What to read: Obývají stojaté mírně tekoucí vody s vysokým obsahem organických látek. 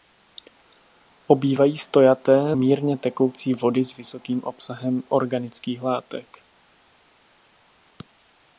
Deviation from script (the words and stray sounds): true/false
false